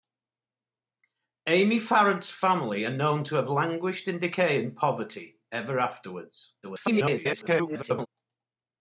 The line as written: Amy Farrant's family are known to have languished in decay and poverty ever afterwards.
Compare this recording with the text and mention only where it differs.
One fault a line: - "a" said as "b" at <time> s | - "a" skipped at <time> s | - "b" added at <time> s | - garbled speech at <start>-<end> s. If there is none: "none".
- garbled speech at 6.6-8.1 s